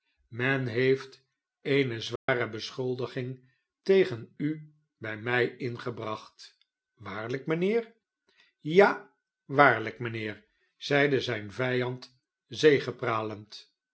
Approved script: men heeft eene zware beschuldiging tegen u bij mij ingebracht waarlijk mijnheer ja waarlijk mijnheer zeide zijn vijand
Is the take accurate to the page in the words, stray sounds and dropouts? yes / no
no